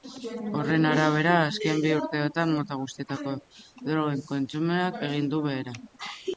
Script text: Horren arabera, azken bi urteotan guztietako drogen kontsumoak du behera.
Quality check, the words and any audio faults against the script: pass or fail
fail